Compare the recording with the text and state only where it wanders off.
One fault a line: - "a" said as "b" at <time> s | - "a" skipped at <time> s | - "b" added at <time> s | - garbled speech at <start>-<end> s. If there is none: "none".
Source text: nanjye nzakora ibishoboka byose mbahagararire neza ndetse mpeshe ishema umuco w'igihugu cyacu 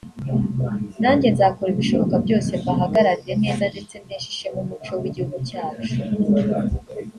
none